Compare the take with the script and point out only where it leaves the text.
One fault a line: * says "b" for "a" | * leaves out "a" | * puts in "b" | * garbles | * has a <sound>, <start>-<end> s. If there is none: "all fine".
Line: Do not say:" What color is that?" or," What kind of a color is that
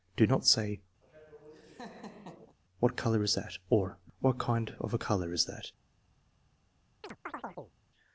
* has a laugh, 1.0-2.6 s
* has a chirp, 7.0-7.7 s